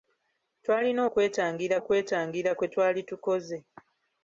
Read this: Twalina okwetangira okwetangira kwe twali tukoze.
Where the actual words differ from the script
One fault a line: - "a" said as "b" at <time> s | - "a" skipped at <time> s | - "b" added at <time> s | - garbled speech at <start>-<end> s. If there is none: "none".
none